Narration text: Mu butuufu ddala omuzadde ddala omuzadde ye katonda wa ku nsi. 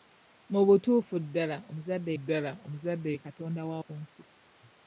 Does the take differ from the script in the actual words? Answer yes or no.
no